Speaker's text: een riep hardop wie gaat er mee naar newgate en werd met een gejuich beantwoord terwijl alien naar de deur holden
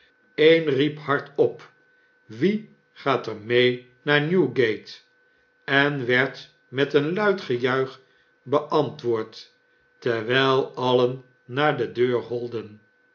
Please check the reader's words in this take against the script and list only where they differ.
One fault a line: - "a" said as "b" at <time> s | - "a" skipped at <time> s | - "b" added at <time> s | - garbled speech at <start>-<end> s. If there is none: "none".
- "luid" added at 7.1 s